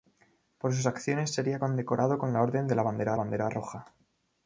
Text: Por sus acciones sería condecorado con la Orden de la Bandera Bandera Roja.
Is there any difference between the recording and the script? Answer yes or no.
no